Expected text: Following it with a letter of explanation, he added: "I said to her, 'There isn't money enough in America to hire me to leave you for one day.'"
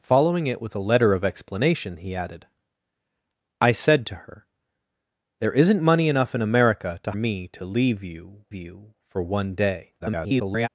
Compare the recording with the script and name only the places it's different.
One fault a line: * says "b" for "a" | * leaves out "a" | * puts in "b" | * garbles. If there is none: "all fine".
* leaves out "hire"
* puts in "you"
* garbles